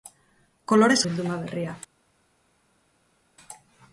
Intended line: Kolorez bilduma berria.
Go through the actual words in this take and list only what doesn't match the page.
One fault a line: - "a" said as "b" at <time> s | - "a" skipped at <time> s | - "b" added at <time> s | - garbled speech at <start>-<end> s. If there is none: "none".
none